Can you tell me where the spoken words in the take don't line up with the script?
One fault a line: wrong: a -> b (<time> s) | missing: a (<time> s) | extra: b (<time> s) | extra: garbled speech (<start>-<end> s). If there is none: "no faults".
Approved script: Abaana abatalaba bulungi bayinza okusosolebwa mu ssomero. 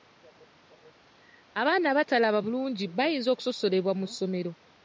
no faults